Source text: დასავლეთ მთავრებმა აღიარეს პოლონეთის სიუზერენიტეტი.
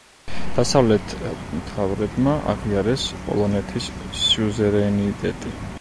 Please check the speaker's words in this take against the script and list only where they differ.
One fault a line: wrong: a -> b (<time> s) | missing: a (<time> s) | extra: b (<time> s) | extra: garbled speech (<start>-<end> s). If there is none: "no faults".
no faults